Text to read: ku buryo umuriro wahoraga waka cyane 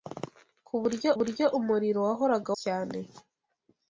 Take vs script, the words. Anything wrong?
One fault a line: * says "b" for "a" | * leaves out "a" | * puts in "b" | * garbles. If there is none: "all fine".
* puts in "buryo"
* leaves out "waka"